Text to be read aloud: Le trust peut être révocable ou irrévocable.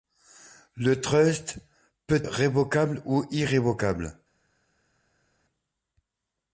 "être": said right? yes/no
no